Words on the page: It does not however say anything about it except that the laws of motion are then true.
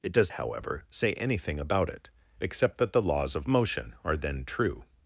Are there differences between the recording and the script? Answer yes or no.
yes